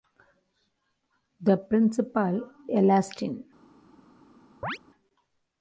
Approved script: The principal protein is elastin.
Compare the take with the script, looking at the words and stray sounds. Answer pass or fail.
fail